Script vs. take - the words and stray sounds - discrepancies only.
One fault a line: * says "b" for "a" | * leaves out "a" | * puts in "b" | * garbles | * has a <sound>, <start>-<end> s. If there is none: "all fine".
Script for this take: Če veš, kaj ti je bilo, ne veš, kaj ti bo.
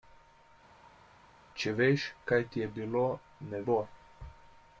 * leaves out "veš kaj ti"